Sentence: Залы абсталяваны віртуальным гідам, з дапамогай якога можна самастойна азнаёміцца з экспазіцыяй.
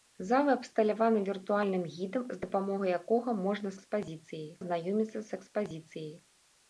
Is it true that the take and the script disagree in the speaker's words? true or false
true